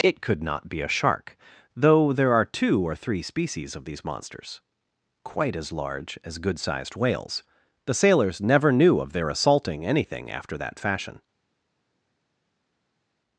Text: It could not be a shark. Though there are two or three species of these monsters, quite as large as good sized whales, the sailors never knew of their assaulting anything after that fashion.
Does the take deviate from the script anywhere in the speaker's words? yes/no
no